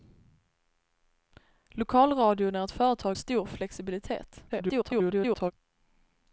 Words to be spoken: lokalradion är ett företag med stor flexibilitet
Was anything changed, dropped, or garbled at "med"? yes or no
yes